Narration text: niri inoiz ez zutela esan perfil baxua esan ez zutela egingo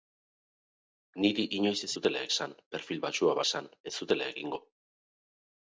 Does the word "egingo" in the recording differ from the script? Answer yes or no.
no